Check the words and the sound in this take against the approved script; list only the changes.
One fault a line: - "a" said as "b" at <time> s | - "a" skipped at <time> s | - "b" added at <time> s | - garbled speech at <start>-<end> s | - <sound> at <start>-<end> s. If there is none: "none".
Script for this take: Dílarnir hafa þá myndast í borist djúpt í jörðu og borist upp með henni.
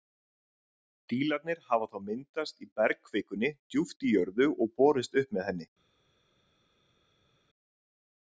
- "borist" said as "bergkvikunni" at 2.8 s